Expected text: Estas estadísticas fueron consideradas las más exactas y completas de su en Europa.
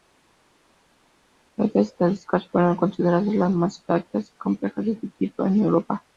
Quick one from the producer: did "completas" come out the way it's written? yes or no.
yes